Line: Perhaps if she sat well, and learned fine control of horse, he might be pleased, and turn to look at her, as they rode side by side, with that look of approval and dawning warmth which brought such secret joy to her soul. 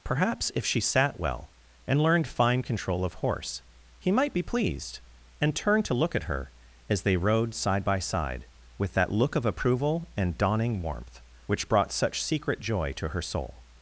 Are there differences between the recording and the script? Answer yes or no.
no